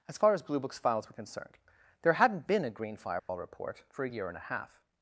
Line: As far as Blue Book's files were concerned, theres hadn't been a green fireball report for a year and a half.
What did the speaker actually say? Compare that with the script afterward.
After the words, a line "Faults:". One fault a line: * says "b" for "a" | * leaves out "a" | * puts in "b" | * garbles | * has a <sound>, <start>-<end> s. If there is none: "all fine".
As far as Blue Book's files were concerned, there hadn't been a green fireball report for a year and a half.
Faults:
* says "there" for "theres"
* has a dropout, 3.2-3.3 s